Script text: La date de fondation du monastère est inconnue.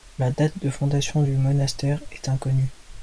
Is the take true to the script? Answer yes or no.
yes